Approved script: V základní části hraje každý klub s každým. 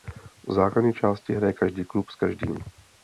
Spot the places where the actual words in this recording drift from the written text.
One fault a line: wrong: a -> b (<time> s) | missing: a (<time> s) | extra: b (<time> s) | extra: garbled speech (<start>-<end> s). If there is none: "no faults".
no faults